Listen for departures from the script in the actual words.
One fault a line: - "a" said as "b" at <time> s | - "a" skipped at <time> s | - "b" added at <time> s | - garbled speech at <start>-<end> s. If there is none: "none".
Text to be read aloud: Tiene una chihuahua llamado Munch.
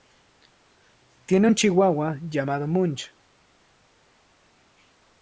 - "una" said as "un" at 1.4 s